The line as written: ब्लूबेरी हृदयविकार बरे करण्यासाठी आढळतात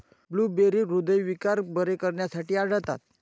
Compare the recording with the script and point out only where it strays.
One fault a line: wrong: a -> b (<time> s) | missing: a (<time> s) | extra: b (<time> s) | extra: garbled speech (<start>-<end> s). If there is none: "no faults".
no faults